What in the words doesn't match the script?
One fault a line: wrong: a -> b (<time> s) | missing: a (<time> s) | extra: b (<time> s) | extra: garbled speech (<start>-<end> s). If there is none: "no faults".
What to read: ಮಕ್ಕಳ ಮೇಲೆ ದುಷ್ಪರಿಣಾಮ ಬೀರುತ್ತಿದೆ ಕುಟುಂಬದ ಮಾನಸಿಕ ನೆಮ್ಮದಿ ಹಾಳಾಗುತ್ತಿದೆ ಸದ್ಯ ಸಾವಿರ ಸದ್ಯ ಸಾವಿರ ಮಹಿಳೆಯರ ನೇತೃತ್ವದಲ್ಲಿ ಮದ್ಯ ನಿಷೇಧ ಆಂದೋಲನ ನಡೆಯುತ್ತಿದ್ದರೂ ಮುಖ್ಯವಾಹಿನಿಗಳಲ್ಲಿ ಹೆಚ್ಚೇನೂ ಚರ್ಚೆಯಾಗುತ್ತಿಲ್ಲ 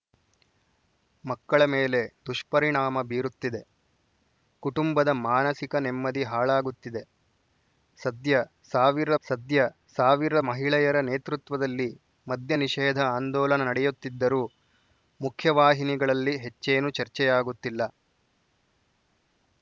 no faults